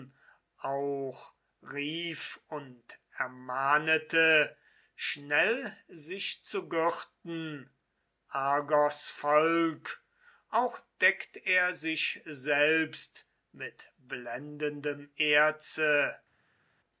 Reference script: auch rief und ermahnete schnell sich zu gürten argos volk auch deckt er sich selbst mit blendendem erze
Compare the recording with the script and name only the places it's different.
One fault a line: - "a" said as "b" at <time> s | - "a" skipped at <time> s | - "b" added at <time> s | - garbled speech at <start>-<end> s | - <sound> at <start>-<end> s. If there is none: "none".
none